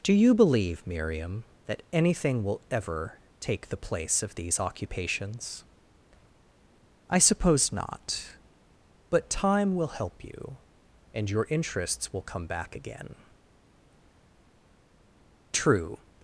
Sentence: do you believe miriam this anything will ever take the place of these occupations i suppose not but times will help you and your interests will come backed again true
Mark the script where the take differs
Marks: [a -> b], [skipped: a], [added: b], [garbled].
do you believe miriam [this -> that] anything will ever take the place of these occupations i suppose not but [times -> time] will help you and your interests will come [backed -> back] again true